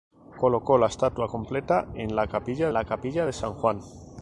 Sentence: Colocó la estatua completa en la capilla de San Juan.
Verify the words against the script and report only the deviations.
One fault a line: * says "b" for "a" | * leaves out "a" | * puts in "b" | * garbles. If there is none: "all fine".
* puts in "la capilla"